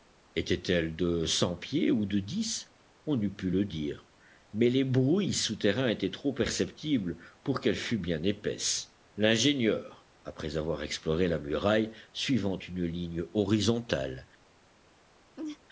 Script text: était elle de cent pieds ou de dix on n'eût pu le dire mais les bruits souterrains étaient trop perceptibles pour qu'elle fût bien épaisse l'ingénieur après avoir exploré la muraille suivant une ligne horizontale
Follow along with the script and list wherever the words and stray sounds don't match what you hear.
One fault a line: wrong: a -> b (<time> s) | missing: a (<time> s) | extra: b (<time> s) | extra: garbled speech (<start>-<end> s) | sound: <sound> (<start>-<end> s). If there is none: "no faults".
sound: laugh (15.4-15.6 s)